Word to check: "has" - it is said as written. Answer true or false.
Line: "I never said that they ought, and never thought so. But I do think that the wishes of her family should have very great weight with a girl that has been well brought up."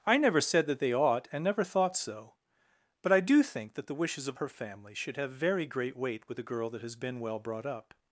true